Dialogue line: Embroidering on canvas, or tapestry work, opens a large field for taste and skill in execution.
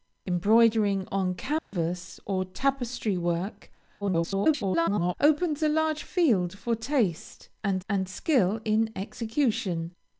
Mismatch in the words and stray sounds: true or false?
true